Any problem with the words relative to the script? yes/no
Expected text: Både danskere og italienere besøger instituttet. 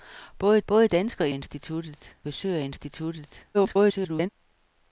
yes